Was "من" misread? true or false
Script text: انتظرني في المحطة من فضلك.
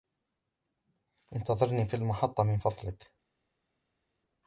false